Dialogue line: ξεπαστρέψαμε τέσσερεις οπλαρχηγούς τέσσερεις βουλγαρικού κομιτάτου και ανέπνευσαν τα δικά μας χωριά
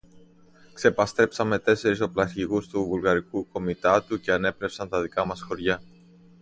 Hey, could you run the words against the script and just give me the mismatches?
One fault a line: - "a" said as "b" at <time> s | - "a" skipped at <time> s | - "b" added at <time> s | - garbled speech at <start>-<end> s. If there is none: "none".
- "τέσσερεις" said as "του" at 2.7 s